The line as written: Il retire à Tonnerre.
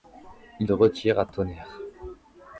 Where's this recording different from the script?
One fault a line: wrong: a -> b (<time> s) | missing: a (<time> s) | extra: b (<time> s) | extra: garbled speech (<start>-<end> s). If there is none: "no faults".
no faults